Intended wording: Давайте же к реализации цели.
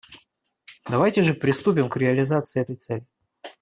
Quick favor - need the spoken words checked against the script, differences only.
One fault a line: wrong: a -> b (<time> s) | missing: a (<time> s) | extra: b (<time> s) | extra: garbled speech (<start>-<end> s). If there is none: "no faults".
extra: приступим (1.4 s)
extra: этой (2.6 s)